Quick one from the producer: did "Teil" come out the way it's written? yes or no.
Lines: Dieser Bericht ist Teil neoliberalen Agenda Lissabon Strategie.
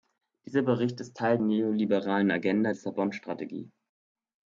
yes